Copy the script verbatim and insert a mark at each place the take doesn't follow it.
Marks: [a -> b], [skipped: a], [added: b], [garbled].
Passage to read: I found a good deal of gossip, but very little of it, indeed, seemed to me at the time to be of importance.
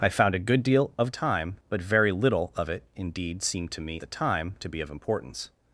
I found a good deal of [gossip, -> time] but very little of it, indeed, seemed to me [skipped: at] the time to be of importance.